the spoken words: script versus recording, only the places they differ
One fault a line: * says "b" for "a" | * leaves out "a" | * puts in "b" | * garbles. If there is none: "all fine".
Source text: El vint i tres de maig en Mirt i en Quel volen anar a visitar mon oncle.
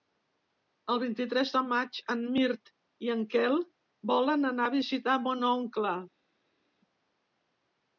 all fine